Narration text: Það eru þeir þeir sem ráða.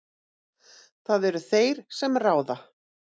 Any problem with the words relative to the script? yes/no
yes